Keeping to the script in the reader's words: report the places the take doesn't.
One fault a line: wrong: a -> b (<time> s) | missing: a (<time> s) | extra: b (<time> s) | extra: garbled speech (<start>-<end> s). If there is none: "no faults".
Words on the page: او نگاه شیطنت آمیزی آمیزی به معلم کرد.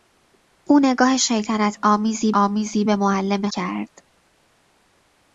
no faults